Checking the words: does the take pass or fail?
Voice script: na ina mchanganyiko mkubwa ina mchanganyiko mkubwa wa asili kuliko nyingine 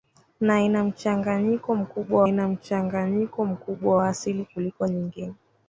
pass